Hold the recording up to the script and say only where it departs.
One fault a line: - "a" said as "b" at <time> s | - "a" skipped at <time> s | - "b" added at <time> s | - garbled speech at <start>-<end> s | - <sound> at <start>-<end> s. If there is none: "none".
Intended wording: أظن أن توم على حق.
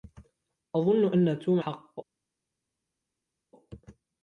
- "على" skipped at 1.6 s